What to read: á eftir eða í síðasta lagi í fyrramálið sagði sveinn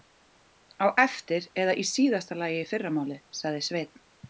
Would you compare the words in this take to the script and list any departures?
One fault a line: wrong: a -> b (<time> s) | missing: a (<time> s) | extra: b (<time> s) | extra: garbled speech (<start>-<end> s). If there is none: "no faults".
no faults